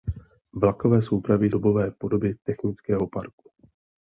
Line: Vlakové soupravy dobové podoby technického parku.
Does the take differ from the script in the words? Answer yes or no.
no